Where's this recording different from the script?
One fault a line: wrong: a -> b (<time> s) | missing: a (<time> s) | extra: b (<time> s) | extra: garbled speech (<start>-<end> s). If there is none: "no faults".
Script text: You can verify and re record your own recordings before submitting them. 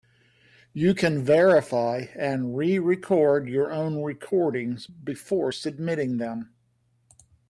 no faults